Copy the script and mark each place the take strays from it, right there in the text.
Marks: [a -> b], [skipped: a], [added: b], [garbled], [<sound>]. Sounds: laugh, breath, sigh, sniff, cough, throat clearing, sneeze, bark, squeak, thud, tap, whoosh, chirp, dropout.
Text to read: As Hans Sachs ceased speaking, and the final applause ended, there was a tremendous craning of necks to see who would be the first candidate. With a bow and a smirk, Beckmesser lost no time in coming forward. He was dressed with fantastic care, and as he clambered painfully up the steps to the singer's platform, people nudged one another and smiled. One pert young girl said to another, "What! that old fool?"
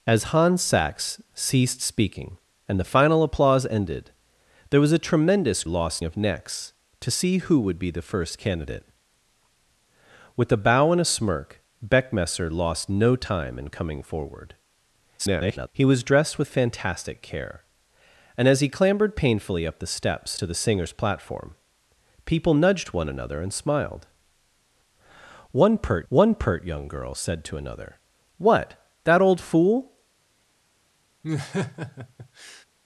As Hans Sachs ceased speaking, and the final applause ended, there was a tremendous [craning -> lost] of necks to see who would be the first candidate. With a bow and a smirk, Beckmesser lost no time in coming forward. [garbled] He was dressed with fantastic care, and as he clambered painfully up the steps to the singer's platform, people nudged one another and smiled. One pert [added: one pert] young girl said to another, "What! that old fool?" [laugh]